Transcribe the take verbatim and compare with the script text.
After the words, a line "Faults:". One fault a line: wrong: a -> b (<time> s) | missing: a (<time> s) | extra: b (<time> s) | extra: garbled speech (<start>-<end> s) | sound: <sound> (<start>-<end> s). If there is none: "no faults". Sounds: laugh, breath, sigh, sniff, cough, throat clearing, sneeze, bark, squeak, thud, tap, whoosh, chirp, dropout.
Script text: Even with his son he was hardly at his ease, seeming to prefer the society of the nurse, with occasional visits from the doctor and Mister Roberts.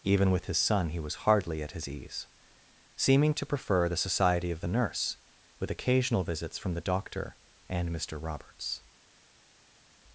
Even with his son he was hardly at his ease, seeming to prefer the society of the nurse, with occasional visits from the doctor and Mister Roberts.
Faults:
no faults